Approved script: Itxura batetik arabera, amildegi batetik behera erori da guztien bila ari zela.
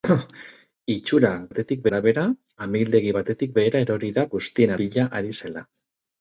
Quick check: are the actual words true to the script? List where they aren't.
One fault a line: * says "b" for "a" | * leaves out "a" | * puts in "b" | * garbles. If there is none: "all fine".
all fine